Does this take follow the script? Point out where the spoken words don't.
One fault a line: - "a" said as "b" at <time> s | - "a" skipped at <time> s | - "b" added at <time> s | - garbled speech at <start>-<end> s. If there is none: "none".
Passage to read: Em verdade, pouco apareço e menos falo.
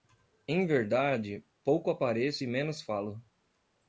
none